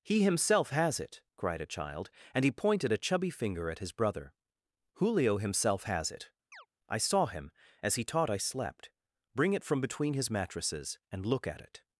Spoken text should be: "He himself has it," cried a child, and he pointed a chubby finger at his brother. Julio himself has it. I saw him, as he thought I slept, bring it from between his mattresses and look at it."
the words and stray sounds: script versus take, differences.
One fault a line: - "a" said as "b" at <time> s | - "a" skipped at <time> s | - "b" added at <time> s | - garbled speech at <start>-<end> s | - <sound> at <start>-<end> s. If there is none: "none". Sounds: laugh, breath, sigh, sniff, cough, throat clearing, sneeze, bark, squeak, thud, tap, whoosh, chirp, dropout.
- chirp at 6.5-6.7 s
- "thought" said as "taught" at 8.0 s